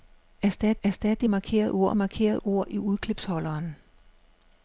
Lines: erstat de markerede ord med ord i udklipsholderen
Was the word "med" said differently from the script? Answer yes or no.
yes